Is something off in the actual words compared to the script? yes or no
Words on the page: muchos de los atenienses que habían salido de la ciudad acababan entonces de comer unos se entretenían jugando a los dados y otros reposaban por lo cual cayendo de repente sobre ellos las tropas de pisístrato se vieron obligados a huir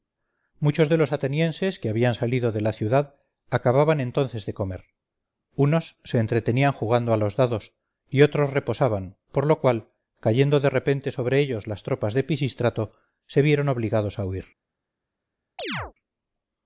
no